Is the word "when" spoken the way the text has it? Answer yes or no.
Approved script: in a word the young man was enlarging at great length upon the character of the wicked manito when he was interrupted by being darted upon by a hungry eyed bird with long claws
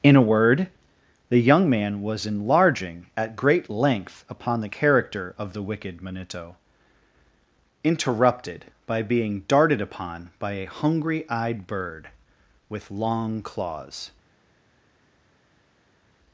no